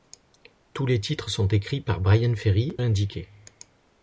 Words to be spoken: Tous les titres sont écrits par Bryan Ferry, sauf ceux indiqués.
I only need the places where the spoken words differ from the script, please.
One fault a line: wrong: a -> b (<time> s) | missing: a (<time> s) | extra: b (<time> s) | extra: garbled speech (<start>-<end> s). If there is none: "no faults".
missing: sauf ceux (2.8 s)